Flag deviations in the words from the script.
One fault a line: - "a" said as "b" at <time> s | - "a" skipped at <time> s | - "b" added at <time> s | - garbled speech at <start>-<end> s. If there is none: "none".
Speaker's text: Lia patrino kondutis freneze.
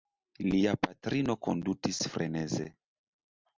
none